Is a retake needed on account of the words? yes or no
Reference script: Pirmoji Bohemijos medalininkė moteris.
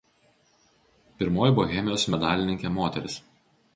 no